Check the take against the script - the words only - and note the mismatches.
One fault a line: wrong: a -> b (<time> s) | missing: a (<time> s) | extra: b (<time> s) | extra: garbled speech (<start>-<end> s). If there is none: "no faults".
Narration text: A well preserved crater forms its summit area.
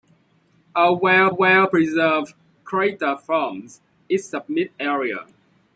extra: well (1.3 s)